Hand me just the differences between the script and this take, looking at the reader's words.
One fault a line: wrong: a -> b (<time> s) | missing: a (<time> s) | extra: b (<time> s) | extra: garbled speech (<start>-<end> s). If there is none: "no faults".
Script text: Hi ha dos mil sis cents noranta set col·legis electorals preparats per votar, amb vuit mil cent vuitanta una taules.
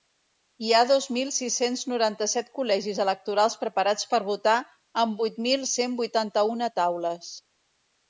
no faults